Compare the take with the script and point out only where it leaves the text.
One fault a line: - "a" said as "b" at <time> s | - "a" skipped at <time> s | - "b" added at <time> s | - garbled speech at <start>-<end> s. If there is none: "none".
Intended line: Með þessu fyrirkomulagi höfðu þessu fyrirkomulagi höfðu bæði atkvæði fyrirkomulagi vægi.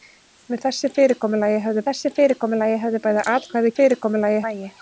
none